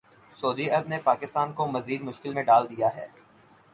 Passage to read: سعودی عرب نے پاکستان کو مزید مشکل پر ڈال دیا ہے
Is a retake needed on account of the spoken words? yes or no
yes